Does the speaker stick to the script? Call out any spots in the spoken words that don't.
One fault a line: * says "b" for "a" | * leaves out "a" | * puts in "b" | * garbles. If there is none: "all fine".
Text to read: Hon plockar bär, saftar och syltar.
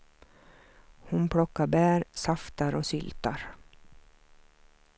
all fine